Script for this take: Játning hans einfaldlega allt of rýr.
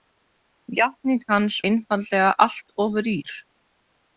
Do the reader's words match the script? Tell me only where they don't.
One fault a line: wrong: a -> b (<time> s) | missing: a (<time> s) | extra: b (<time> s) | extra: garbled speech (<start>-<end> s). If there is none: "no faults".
no faults